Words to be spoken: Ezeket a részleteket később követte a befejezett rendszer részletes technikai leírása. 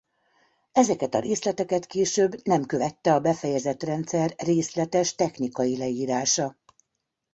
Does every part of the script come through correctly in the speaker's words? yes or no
no